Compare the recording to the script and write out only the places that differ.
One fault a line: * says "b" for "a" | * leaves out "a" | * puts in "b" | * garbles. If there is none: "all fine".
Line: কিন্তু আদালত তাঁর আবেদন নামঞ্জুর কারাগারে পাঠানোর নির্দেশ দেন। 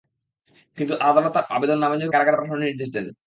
all fine